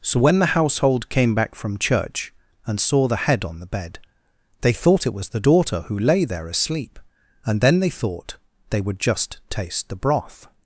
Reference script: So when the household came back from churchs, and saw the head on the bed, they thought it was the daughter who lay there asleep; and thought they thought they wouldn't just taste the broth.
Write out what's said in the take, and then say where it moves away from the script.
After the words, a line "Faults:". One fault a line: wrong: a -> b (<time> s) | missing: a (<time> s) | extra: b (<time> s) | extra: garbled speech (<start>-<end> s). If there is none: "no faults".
So when the household came back from church, and saw the head on the bed, they thought it was the daughter who lay there asleep; and then they thought they would just taste the broth.
Faults:
wrong: churchs -> church (1.8 s)
wrong: thought -> then (7.6 s)
wrong: wouldn't -> would (8.8 s)